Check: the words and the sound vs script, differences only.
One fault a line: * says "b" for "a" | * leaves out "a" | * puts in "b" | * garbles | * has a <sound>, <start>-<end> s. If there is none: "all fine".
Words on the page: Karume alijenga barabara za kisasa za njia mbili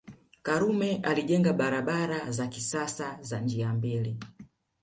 all fine